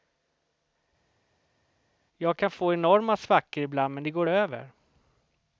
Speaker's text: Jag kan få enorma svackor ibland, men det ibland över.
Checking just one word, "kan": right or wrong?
right